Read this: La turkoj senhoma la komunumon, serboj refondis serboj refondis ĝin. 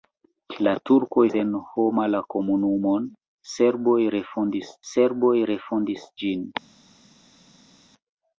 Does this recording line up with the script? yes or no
yes